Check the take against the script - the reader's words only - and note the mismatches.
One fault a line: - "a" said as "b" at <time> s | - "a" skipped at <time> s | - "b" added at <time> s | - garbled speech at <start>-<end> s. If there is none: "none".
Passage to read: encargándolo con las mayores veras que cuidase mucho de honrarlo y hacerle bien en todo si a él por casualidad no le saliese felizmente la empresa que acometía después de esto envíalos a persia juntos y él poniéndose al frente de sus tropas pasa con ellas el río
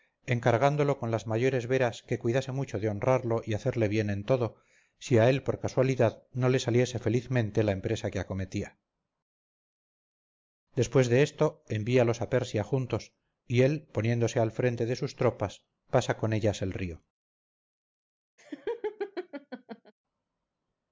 none